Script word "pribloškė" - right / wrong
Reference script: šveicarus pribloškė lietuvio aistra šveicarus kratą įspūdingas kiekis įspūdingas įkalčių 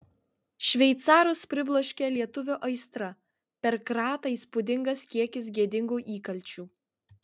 right